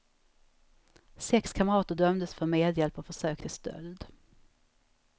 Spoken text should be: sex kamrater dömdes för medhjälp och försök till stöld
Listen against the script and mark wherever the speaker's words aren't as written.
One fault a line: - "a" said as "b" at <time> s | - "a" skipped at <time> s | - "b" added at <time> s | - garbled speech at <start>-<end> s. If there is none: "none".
none